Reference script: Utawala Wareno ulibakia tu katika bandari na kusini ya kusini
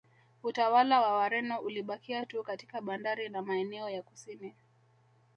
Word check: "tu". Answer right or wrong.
right